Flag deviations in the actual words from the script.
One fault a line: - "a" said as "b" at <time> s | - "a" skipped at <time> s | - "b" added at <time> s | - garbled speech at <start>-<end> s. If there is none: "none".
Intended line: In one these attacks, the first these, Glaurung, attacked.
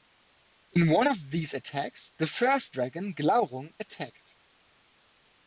- "of" added at 1.0 s
- "these" said as "dragon" at 2.7 s